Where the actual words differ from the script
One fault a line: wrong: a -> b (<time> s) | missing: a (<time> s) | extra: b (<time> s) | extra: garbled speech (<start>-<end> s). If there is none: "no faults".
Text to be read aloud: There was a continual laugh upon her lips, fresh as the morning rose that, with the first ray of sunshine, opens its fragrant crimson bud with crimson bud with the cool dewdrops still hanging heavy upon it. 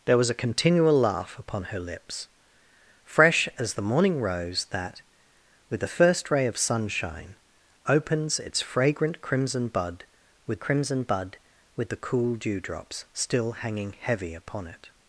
no faults